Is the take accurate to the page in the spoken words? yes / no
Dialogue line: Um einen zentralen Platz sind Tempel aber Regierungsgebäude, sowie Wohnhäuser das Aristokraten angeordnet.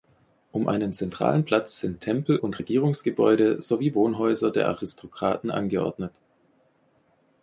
no